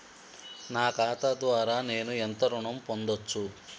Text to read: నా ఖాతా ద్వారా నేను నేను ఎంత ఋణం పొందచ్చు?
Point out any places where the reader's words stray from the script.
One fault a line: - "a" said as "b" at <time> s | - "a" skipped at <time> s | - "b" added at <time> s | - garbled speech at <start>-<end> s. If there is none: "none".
- "నేను" skipped at 2.1 s